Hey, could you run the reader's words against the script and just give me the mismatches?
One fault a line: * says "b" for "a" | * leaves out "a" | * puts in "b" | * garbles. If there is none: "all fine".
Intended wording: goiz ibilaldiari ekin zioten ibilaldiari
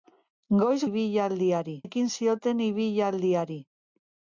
all fine